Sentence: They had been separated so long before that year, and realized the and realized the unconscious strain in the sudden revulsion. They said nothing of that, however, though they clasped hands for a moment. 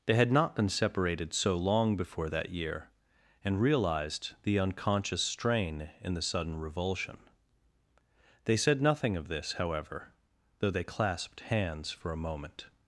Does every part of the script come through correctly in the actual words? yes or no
no